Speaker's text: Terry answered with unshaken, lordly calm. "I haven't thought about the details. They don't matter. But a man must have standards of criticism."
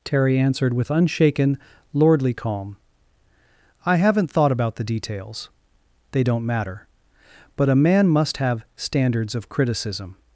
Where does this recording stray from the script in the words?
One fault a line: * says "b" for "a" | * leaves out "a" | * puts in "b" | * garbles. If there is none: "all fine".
all fine